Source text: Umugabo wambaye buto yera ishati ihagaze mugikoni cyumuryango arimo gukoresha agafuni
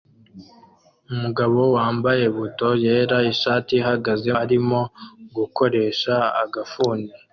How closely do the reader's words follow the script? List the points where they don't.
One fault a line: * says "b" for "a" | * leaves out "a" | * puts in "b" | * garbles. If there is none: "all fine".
* leaves out "mugikoni cyumuryango"